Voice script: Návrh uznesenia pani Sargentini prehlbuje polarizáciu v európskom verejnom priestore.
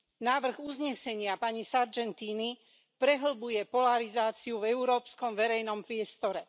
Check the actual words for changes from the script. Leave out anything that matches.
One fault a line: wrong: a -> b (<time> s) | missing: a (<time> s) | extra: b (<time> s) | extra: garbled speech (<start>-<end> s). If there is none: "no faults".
no faults